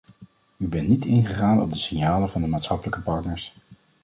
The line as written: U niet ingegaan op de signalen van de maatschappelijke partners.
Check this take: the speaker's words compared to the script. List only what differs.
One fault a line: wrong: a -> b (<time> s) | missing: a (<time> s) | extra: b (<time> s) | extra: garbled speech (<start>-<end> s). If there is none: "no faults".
extra: bent (0.7 s)